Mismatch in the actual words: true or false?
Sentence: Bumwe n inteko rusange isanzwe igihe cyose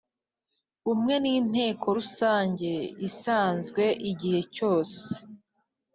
false